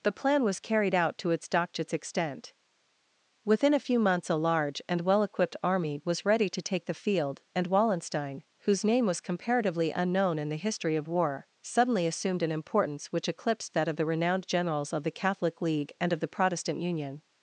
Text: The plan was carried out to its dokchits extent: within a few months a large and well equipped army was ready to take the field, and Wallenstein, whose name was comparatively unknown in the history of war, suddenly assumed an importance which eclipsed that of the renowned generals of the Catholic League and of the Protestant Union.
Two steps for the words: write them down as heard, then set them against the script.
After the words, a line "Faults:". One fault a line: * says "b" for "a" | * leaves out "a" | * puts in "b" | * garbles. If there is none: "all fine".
The plan was carried out to its dokchits extent: within a few months a large and well equipped army was ready to take the field, and Wallenstein, whose name was comparatively unknown in the history of war, suddenly assumed an importance which eclipsed that of the renowned generals of the Catholic League and of the Protestant Union.
Faults:
all fine